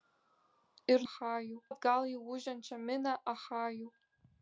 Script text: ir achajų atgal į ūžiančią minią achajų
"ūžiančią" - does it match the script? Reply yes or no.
yes